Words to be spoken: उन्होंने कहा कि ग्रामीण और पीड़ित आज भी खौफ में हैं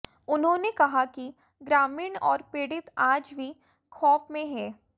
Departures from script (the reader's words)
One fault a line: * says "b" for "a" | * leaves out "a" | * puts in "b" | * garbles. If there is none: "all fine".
all fine